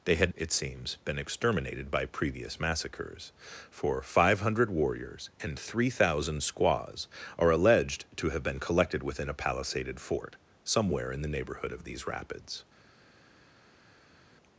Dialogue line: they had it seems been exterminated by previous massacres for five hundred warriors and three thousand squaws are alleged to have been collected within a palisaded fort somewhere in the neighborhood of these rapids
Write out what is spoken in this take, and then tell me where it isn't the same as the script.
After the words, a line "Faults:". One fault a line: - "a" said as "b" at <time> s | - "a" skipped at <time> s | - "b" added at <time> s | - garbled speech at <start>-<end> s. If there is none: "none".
they had it seems been exterminated by previous massacres for five hundred warriors and three thousand squaws are alleged to have been collected within a palisaded fort somewhere in the neighborhood of these rapids
Faults:
none